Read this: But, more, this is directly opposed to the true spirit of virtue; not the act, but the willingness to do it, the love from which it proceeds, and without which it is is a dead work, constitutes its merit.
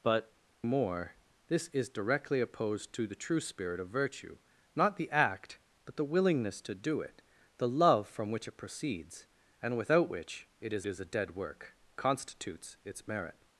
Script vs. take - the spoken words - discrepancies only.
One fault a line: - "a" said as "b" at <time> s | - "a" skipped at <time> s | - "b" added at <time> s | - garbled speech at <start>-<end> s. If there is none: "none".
none